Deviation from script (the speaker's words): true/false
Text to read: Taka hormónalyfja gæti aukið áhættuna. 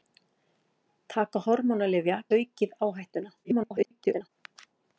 true